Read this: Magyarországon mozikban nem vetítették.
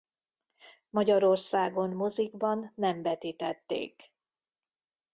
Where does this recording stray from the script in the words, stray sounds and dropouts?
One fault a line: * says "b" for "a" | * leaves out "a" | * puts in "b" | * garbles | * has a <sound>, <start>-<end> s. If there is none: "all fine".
all fine